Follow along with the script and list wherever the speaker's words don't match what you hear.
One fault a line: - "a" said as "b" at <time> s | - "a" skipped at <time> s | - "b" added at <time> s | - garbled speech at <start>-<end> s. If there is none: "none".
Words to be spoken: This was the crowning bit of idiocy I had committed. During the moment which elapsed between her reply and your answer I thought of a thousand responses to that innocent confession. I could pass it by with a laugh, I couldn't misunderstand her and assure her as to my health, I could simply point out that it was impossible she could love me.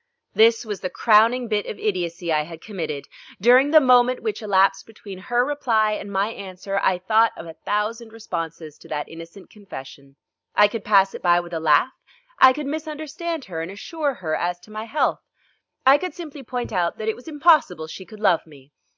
- "your" said as "my" at 6.1 s
- "couldn't" said as "could" at 12.5 s